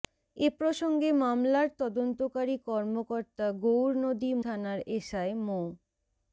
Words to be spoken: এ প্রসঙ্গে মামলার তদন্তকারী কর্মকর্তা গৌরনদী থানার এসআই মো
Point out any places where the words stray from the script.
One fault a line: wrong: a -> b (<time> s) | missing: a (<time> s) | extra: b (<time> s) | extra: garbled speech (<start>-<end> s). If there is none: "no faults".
no faults